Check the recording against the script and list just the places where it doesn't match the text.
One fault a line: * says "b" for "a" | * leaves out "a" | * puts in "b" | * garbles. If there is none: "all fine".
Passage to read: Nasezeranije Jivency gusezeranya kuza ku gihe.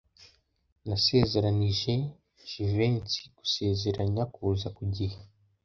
all fine